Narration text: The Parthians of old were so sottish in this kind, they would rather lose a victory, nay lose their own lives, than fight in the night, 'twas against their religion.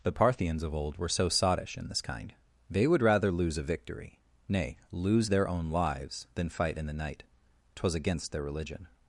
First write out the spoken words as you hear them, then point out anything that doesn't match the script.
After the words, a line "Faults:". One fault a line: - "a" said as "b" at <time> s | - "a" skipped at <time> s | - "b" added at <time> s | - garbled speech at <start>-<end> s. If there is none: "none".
The Parthians of old were so sottish in this kind, they would rather lose a victory, nay lose their own lives, than fight in the night, 'twas against their religion.
Faults:
none